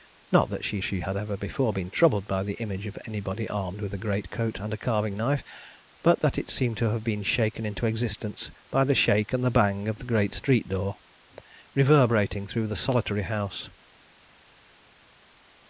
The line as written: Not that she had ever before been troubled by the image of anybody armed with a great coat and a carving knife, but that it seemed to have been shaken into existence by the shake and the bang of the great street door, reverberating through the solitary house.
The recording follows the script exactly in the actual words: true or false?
false